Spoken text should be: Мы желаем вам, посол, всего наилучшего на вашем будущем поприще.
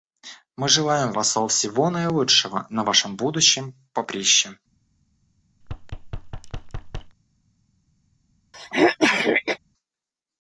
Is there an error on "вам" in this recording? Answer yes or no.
yes